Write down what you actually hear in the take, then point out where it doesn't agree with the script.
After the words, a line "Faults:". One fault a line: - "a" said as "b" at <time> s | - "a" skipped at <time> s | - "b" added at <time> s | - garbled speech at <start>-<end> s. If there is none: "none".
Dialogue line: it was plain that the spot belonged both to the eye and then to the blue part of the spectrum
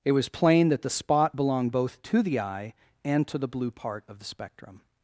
it was plain that the spot belonged both to the eye and to the blue part of the spectrum
Faults:
- "then" skipped at 3.3 s